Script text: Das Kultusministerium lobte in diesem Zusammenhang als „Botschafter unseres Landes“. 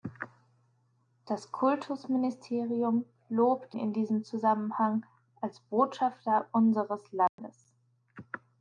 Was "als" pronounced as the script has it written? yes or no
yes